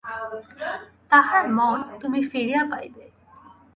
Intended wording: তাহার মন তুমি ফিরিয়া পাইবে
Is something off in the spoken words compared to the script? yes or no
no